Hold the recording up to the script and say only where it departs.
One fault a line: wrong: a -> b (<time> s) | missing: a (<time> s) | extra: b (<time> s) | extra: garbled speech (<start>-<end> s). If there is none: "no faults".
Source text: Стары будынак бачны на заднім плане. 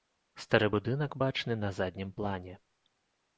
no faults